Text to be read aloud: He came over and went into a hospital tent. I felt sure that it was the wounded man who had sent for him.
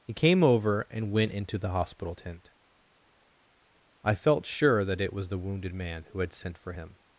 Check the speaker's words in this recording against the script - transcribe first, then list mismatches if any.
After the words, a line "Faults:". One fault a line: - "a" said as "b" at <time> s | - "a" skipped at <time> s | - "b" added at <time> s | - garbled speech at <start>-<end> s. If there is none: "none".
He came over and went into the hospital tent. I felt sure that it was the wounded man who had sent for him.
Faults:
- "a" said as "the" at 1.6 s